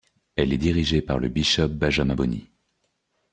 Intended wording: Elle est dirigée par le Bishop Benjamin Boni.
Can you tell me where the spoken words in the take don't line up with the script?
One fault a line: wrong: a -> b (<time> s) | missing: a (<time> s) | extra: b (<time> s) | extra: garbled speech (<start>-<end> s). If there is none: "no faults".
no faults